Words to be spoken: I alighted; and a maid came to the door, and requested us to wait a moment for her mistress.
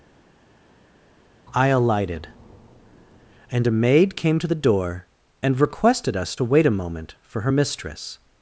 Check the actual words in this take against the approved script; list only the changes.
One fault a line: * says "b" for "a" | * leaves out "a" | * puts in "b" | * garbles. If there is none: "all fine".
all fine